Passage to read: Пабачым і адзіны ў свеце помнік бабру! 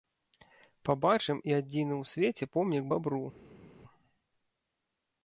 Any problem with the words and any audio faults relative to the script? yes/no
no